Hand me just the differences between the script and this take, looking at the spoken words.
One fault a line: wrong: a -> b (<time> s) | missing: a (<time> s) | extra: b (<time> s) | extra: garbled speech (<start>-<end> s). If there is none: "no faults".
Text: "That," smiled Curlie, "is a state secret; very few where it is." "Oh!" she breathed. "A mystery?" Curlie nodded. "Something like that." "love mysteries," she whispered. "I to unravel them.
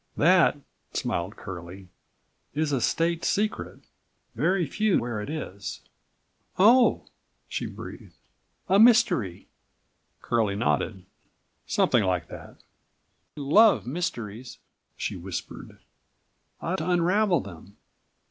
no faults